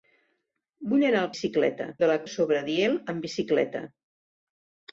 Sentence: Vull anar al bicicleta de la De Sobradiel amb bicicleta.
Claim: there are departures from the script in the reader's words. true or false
false